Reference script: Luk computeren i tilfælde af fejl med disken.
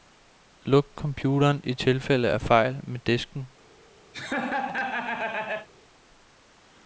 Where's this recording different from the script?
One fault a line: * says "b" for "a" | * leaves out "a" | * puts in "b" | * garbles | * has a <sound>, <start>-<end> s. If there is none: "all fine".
* has a laugh, 4.1-5.7 s